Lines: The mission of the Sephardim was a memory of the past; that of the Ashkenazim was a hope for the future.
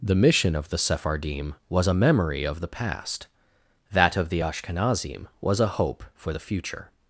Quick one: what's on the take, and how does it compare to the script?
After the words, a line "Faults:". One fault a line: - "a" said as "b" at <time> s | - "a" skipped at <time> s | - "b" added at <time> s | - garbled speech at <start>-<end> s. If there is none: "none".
The mission of the Sephardim was a memory of the past; that of the Ashkenazim was a hope for the future.
Faults:
none